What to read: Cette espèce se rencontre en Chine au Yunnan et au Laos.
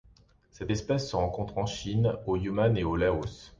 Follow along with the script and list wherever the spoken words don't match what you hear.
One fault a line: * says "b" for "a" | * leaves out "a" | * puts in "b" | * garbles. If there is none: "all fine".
all fine